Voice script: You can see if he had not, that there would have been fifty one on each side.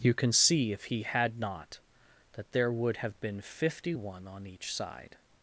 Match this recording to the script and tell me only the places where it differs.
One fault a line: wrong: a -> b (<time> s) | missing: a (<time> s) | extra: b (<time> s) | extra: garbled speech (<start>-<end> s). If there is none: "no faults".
no faults